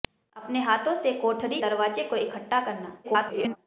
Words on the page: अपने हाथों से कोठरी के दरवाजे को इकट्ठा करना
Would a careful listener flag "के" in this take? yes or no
yes